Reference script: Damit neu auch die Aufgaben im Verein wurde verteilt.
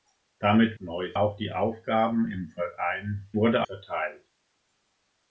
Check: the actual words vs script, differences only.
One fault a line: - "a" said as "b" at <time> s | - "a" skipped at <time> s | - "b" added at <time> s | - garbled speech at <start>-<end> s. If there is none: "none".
none